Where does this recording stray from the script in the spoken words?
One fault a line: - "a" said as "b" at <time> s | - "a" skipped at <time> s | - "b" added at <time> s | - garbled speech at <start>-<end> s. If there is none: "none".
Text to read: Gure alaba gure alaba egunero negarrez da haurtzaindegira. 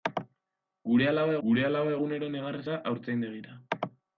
none